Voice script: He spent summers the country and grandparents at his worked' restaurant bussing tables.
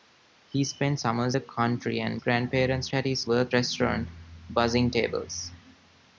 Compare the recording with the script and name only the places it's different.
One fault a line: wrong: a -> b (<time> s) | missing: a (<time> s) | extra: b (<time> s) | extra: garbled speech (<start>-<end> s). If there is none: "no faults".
no faults